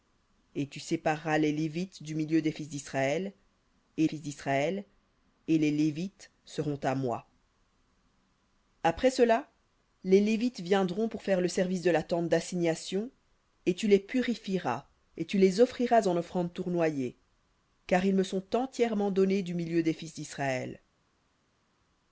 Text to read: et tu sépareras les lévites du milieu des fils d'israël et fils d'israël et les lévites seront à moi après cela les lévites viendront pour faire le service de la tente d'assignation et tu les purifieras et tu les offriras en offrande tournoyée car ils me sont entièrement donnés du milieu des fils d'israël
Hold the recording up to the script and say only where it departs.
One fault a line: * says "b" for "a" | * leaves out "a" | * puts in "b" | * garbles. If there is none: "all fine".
all fine